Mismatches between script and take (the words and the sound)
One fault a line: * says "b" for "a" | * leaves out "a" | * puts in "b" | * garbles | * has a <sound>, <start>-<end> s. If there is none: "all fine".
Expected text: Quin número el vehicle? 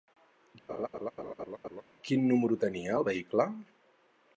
* has a laugh, 0.7-1.8 s
* puts in "tenia"